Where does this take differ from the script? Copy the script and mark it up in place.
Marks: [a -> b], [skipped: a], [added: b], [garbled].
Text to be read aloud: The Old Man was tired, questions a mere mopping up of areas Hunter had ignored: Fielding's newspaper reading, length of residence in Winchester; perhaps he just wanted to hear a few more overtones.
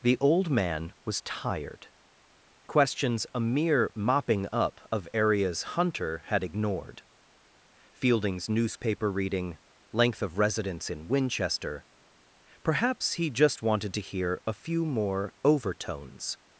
The Old Man was tired, questions a mere mopping up of areas Hunter had ignored: Fielding's newspaper reading, length of residence in Winchester; perhaps he just wanted to hear a few more overtones.